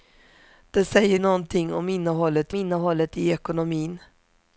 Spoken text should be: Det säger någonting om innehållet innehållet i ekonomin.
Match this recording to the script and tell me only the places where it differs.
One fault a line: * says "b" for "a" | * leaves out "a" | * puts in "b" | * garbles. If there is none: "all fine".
all fine